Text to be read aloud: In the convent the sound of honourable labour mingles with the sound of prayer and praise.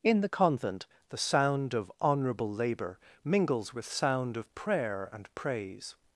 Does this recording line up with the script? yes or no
no